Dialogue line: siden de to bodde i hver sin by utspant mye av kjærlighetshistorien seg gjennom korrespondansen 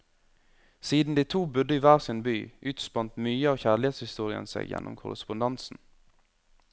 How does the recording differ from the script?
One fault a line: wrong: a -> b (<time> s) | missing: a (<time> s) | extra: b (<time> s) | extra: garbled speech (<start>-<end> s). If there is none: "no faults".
no faults